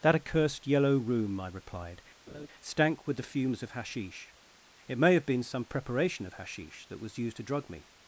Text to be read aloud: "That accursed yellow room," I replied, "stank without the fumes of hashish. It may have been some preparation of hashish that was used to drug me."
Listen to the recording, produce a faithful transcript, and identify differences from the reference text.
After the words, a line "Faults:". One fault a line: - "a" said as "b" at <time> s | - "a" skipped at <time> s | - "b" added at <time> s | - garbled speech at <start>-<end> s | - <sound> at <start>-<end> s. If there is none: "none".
"That accursed yellow room," I replied, "stank with the fumes of hashish. It may have been some preparation of hashish that was used to drug me."
Faults:
- laugh at 2.3-2.5 s
- "without" said as "with" at 3.1 s